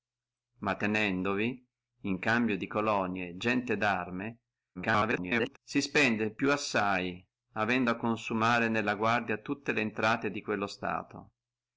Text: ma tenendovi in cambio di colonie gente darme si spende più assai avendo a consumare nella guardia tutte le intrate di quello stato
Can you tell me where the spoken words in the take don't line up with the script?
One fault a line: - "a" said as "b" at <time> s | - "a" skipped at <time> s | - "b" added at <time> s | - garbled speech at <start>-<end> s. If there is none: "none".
- garbled speech at 4.7-5.6 s